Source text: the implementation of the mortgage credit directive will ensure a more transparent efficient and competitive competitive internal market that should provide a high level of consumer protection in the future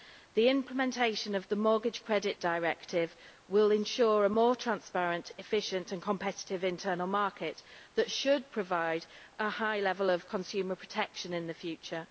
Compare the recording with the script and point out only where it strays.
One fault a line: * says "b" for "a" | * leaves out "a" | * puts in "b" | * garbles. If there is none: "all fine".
* leaves out "competitive"